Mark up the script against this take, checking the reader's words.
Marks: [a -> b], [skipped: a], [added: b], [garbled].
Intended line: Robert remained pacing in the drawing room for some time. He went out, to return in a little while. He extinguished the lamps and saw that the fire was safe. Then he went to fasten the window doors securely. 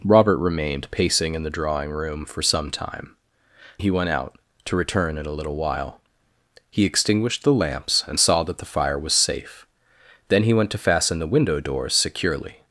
Robert remained pacing in the drawing room for some time. He went out, to return in a little while. He extinguished the lamps and saw that the fire was safe. Then he went to fasten the window doors securely.